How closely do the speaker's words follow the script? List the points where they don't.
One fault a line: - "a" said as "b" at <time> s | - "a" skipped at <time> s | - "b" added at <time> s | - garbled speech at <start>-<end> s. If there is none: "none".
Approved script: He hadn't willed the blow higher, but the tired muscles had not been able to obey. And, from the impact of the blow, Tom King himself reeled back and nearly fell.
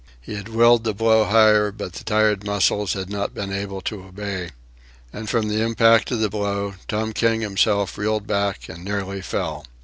- "hadn't" said as "had" at 0.3 s